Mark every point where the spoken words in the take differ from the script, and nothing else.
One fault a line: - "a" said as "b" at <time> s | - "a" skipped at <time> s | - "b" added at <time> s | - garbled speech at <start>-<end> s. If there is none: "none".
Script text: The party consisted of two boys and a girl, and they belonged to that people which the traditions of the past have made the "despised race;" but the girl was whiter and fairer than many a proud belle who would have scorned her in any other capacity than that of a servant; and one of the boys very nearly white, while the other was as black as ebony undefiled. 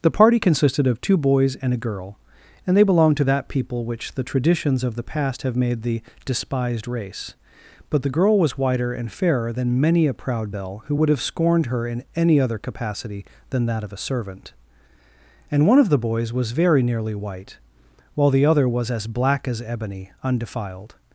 - "was" added at 16.3 s